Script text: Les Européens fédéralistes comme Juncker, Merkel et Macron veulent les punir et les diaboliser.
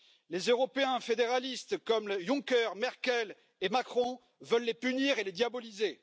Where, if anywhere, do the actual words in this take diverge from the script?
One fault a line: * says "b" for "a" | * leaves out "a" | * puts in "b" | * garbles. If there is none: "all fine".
all fine